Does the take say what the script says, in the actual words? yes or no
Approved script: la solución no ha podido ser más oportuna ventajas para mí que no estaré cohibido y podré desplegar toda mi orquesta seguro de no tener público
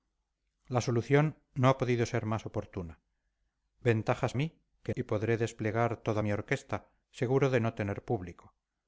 no